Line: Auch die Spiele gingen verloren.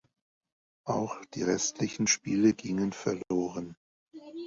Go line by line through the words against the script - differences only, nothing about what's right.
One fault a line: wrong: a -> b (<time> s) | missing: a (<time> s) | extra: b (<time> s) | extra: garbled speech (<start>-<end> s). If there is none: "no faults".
extra: restlichen (1.4 s)